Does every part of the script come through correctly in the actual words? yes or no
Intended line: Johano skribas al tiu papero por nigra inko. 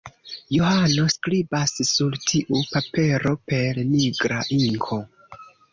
no